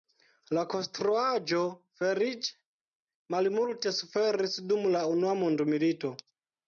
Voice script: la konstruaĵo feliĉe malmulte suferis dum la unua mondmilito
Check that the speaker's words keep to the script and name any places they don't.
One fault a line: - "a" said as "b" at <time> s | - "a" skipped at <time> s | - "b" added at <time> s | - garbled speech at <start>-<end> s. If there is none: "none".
none